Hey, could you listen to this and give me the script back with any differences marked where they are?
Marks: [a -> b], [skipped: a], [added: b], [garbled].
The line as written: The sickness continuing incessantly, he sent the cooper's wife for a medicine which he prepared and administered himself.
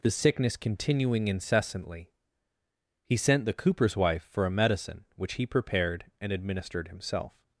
The sickness continuing incessantly, he sent the cooper's wife for a medicine which he prepared and administered himself.